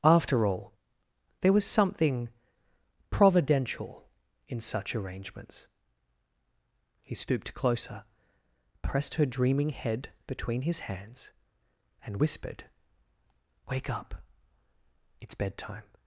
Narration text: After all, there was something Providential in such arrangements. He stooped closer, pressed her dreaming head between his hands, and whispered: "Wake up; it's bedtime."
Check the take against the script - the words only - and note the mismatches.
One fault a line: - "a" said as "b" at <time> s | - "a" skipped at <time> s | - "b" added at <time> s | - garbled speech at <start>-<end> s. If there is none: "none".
none